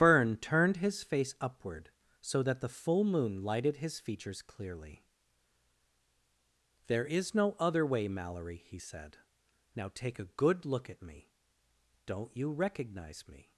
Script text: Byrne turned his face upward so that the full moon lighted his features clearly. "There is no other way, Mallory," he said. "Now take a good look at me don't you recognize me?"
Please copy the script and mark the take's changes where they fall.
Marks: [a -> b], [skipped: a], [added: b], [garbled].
Byrne turned his face upward so that the full moon lighted his features clearly. "There is no other way, Mallory," he said. "Now take a good look at me don't you recognize me?"